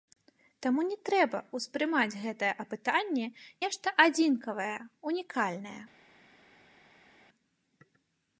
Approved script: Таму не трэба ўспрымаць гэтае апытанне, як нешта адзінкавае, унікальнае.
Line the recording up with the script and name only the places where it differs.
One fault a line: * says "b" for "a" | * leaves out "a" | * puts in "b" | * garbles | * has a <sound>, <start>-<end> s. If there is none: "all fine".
* leaves out "як"